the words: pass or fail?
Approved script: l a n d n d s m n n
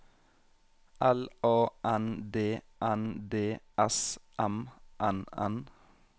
pass